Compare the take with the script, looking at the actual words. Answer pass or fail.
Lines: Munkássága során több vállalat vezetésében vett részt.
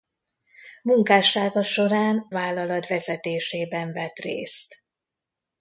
fail